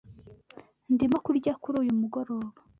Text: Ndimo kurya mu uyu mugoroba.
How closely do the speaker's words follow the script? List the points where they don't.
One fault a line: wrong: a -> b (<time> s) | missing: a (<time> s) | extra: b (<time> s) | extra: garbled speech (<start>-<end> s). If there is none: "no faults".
wrong: mu -> kuri (1.6 s)